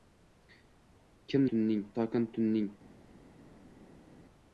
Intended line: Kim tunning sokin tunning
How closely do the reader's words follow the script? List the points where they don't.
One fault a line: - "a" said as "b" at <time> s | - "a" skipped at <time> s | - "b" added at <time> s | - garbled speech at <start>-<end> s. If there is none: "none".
none